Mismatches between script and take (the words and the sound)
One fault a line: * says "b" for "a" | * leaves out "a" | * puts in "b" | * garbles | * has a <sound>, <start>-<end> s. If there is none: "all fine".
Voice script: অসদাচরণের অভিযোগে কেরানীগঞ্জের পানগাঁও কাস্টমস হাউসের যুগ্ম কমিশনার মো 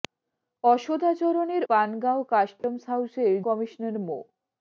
* leaves out "অভিযোগে কেরানীগঞ্জের"
* has a dropout, 2.6-2.6 s
* leaves out "যুগ্ম"